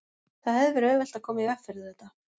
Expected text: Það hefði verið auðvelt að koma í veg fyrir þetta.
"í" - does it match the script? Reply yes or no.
yes